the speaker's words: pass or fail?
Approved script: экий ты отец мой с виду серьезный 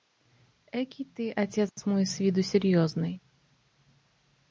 pass